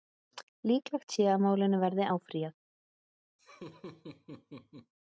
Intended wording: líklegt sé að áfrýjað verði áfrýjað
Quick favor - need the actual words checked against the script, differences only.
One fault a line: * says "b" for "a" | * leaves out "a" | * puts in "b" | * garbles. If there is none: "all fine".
* says "málinu" for "áfrýjað"